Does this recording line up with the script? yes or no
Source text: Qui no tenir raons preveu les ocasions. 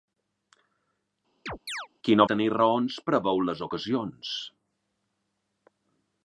yes